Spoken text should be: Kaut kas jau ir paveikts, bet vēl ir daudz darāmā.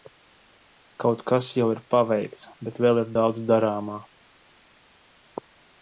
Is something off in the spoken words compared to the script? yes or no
no